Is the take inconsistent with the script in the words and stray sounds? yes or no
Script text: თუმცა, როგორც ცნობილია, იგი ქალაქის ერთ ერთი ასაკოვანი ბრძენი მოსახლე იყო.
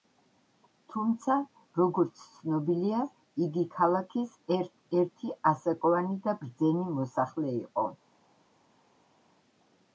yes